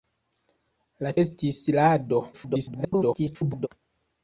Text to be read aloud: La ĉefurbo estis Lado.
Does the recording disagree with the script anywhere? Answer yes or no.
yes